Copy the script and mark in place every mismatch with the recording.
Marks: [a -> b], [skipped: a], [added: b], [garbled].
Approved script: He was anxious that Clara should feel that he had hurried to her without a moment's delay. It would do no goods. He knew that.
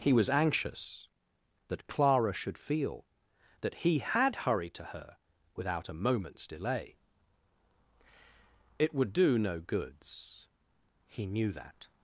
He was anxious that Clara should feel that he had hurried to her without a moment's delay. It would do no goods. He knew that.